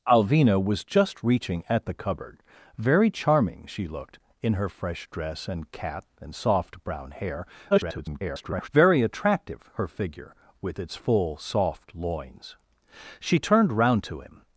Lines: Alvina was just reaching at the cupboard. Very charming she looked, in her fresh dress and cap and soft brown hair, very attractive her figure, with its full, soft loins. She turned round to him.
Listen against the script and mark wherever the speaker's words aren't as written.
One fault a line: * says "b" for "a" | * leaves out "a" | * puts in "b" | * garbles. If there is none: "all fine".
* garbles